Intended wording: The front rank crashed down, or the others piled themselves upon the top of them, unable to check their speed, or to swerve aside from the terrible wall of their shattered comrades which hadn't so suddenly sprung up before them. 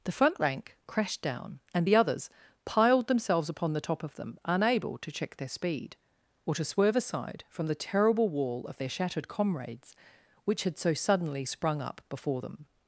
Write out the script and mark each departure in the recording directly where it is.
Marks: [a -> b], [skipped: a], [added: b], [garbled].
The front rank crashed down, [or -> and] the others piled themselves upon the top of them, unable to check their speed, or to swerve aside from the terrible wall of their shattered comrades which [hadn't -> had] so suddenly sprung up before them.